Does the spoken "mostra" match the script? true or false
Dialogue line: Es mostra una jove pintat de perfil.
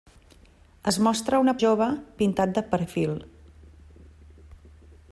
true